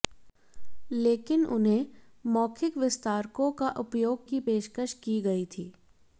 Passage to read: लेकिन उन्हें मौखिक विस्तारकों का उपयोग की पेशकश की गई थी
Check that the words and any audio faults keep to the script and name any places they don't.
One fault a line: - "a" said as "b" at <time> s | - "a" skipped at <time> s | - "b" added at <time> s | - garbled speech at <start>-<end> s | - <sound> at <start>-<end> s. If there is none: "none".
none